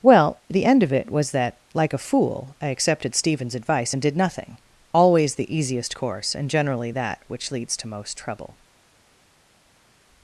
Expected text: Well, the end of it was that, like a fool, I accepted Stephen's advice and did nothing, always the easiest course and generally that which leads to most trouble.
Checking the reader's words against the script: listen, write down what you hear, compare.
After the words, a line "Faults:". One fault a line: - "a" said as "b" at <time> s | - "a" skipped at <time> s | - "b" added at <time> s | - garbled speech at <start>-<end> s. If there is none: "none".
Well, the end of it was that, like a fool, I accepted Stephen's advice and did nothing, always the easiest course and generally that which leads to most trouble.
Faults:
none